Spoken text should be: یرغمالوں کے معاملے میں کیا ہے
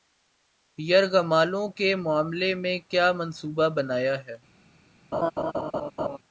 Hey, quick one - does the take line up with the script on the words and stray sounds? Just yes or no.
no